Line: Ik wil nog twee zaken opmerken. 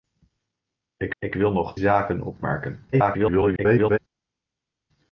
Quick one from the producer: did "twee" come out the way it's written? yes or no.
no